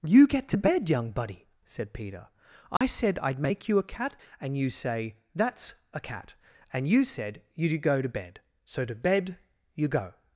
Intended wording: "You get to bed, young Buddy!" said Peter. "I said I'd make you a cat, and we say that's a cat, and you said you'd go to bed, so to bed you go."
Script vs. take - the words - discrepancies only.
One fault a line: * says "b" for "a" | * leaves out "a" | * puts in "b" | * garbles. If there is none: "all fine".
* says "you" for "we"